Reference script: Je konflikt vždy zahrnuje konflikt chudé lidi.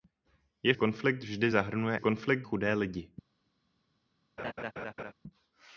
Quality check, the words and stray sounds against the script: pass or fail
fail